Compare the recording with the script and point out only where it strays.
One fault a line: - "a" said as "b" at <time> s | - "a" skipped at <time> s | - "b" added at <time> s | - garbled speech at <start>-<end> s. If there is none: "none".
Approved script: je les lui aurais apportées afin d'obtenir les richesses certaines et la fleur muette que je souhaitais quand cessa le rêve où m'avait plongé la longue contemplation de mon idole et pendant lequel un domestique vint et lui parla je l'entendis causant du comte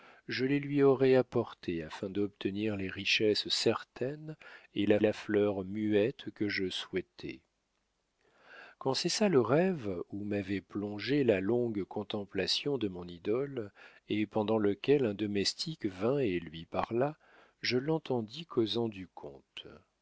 - "la" added at 5.0 s